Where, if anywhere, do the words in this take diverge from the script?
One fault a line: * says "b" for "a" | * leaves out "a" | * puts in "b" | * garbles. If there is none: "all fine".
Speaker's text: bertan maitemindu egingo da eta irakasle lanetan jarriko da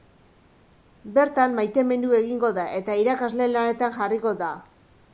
all fine